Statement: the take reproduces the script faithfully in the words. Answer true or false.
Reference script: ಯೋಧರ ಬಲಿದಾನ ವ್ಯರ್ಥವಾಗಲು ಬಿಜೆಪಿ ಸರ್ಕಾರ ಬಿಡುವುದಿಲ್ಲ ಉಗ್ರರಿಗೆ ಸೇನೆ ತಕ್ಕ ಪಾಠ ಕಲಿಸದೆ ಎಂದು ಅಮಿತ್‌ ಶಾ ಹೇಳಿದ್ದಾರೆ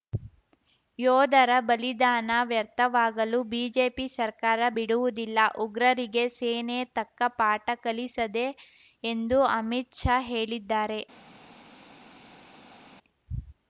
true